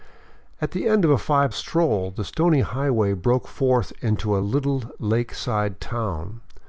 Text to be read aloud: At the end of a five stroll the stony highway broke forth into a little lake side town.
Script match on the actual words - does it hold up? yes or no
yes